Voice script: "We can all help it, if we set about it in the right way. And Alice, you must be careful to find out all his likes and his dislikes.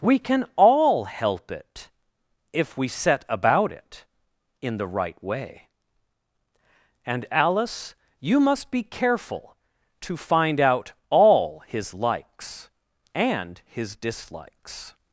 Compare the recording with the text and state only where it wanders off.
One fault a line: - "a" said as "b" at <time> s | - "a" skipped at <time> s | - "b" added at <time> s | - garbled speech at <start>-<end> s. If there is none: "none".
none